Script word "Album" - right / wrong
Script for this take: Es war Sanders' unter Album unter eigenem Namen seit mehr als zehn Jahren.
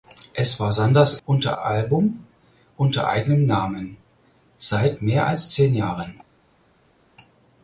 right